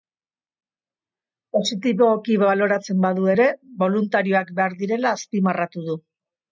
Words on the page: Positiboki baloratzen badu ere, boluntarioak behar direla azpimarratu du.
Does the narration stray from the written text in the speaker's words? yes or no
no